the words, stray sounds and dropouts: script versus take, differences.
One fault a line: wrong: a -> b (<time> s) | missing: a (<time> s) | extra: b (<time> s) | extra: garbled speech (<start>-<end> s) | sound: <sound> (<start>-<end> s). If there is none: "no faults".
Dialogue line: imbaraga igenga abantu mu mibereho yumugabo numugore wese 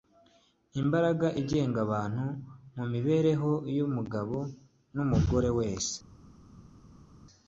no faults